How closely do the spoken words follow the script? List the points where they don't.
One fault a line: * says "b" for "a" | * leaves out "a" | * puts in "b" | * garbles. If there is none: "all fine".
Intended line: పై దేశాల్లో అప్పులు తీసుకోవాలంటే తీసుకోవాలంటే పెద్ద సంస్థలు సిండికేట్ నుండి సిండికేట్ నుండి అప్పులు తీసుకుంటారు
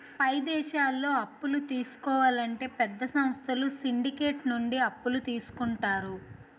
* leaves out "తీసుకోవాలంటే"
* leaves out "సిండికేట్ నుండి"